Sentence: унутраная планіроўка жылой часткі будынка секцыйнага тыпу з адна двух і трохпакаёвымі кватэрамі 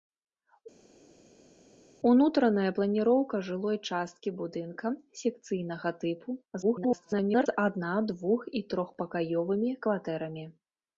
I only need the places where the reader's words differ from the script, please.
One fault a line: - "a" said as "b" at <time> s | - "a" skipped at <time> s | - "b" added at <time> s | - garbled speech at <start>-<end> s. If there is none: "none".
- garbled speech at 6.6-7.5 s